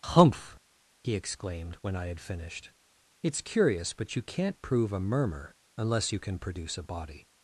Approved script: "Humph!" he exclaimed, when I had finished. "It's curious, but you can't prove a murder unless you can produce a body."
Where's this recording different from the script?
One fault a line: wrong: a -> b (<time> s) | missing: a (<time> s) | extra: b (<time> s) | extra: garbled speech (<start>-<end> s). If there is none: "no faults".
wrong: murder -> murmur (5.0 s)